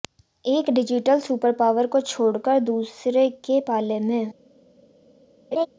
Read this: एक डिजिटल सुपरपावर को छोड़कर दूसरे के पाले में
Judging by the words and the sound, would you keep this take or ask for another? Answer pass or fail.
fail